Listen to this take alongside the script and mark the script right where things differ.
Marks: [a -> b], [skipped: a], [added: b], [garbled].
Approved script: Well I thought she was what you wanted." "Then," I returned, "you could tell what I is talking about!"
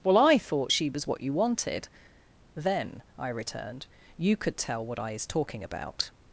Well I thought she was what you wanted." "Then," I returned, "you could tell what I is talking about!"